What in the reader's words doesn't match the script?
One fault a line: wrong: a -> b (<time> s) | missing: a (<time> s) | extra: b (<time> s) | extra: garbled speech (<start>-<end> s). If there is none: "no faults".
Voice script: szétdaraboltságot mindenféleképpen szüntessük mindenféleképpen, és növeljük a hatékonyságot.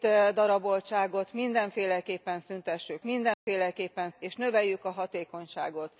no faults